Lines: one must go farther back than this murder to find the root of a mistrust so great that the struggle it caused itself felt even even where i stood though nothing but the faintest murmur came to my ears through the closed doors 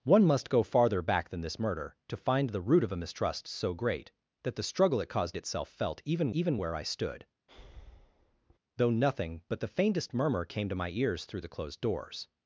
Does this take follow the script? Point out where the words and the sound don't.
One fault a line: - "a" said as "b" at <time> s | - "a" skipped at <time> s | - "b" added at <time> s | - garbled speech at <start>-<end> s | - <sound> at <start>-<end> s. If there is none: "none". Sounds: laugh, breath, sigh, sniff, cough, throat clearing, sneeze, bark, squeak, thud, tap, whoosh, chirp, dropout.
- breath at 7.5-8.6 s